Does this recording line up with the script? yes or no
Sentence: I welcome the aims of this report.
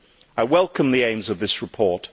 yes